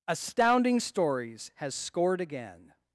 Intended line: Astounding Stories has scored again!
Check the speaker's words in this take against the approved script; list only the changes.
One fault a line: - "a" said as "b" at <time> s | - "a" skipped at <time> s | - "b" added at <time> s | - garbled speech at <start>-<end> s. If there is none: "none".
none